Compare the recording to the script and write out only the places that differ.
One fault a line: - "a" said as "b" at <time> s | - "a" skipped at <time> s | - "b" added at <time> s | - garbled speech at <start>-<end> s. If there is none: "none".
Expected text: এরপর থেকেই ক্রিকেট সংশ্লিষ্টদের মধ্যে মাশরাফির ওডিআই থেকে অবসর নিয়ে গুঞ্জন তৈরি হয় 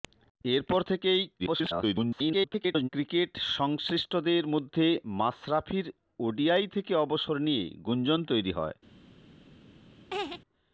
- garbled speech at 1.4-2.9 s